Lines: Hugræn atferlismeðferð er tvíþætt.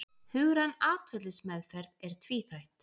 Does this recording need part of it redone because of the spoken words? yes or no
no